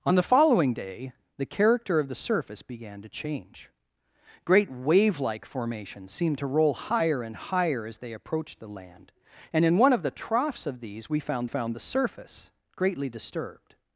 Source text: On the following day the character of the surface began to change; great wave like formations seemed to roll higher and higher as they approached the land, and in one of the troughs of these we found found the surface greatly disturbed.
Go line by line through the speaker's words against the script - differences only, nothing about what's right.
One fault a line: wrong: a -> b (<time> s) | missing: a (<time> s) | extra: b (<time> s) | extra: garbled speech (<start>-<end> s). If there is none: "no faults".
no faults